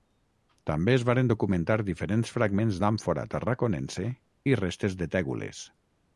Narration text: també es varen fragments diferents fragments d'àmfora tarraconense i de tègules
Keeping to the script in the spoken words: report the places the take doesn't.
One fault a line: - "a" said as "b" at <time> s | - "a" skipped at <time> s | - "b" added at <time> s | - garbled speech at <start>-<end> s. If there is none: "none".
- "fragments" said as "documentar" at 1.3 s
- "restes" added at 4.6 s